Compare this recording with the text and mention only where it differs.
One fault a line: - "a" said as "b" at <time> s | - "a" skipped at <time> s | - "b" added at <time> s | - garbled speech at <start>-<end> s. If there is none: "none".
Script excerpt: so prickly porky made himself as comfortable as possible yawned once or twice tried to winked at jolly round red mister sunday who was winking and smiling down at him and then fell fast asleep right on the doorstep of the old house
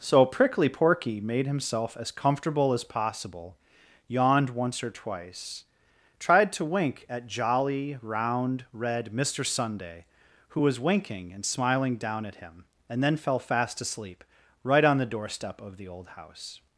- "winked" said as "wink" at 6.7 s